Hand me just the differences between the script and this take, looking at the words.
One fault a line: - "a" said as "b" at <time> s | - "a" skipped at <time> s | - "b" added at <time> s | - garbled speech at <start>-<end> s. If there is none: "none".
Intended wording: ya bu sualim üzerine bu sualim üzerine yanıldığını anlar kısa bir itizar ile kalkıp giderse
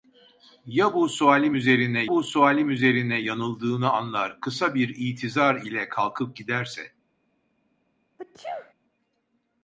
none